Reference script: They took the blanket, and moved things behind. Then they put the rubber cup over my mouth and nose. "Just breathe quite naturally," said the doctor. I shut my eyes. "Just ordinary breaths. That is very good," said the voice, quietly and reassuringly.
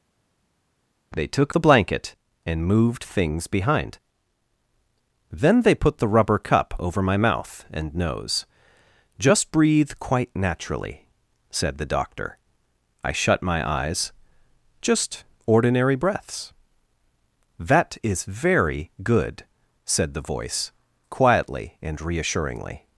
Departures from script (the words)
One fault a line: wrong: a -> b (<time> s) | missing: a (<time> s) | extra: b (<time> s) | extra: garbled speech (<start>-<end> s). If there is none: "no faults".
no faults